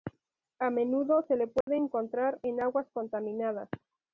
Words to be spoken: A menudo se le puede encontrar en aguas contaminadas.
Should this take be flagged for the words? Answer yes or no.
no